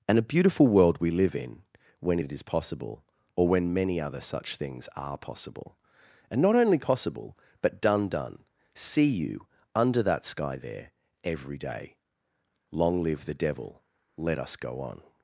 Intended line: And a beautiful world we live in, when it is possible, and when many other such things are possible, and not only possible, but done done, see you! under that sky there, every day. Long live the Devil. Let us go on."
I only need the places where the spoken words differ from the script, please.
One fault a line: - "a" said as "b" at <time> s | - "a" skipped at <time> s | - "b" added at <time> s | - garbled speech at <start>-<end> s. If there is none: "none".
- "and" said as "or" at 3.4 s